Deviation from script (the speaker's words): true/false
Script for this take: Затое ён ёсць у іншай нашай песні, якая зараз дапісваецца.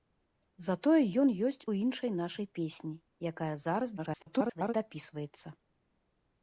true